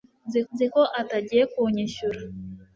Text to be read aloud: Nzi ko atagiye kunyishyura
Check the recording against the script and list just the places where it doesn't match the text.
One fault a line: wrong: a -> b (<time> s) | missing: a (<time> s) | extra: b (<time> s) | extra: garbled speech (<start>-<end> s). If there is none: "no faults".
extra: nzi (0.5 s)